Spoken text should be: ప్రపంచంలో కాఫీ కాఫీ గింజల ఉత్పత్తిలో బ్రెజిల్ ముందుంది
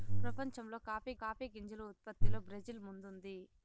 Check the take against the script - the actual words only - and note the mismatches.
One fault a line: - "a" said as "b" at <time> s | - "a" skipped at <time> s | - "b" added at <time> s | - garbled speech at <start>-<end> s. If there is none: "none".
none